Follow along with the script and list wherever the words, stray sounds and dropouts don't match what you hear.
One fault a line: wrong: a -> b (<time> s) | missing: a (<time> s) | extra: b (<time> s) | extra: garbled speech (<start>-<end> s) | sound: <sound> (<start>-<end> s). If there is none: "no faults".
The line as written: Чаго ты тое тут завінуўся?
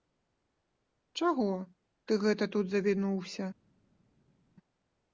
wrong: тое -> гэта (2.3 s)